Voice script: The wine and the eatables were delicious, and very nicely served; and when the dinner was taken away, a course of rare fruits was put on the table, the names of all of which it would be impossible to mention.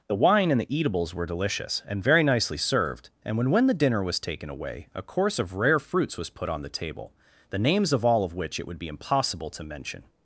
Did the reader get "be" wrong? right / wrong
right